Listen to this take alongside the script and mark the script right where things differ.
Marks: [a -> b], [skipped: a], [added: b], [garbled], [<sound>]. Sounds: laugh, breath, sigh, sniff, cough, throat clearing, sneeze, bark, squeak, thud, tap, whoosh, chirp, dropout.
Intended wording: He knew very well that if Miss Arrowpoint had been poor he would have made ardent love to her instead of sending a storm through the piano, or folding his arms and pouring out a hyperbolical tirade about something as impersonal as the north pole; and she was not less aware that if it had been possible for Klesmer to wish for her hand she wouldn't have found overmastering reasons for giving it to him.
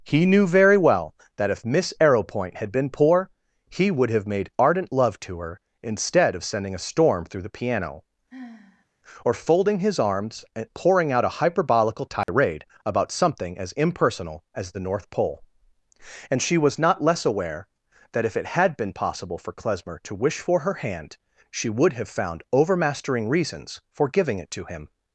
He knew very well that if Miss Arrowpoint had been poor he would have made ardent love to her instead of sending a storm through the piano, [sigh] or folding his arms and pouring out a hyperbolical tirade [dropout] about something as impersonal as the north pole; and she was not less aware that if it had been possible for Klesmer to wish for her hand she [wouldn't -> would] have found overmastering reasons for giving it to him.